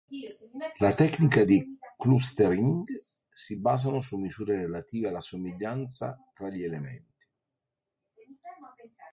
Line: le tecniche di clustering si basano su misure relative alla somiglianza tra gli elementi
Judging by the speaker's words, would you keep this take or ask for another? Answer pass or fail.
pass